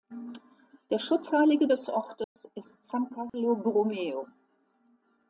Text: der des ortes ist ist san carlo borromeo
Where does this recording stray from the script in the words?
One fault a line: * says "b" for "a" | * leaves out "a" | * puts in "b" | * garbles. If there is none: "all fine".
* puts in "schutzheilige"
* leaves out "ist"